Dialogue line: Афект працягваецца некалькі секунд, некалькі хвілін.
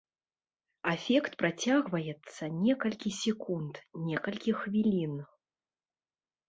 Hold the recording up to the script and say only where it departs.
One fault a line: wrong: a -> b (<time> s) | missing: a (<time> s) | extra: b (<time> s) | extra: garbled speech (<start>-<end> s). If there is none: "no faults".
no faults